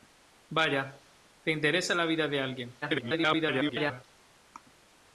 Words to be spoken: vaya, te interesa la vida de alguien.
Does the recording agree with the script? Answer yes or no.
no